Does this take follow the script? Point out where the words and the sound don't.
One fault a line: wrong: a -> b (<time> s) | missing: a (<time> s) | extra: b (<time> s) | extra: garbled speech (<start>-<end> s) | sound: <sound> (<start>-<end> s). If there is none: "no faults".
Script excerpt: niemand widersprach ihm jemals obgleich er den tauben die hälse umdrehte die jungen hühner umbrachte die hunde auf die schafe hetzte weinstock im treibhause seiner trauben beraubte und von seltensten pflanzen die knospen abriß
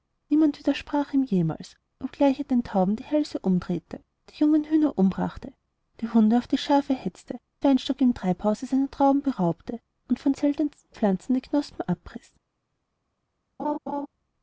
sound: laugh (13.6-14.1 s)